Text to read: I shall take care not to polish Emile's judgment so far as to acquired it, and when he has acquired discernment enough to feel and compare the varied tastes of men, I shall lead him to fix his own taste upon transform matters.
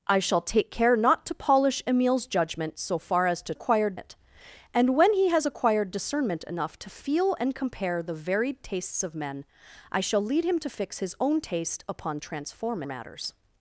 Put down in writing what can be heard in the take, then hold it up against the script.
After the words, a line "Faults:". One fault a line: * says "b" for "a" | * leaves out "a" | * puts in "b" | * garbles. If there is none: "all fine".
I shall take care not to polish Emile's judgment so far as to acquired it, and when he has acquired discernment enough to feel and compare the varied tastes of men, I shall lead him to fix his own taste upon transform matters.
Faults:
all fine